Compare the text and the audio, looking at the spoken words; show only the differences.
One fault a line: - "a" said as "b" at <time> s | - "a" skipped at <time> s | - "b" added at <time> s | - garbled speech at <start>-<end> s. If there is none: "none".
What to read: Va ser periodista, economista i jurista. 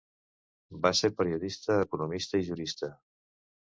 none